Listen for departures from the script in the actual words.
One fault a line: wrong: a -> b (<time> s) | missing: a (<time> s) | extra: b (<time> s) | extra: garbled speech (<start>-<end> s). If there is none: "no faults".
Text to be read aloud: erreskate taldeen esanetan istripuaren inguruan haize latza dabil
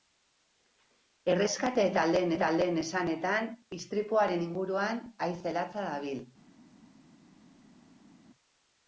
extra: taldeen (2.4 s)